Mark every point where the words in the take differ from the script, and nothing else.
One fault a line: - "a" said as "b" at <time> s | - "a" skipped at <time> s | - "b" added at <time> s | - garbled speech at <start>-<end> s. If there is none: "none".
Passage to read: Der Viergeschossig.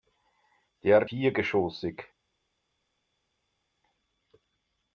none